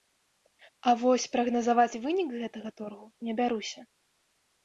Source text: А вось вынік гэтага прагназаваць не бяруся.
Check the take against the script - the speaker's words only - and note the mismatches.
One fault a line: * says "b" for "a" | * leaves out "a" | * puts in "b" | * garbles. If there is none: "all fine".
* puts in "прагназаваць"
* says "торгу" for "прагназаваць"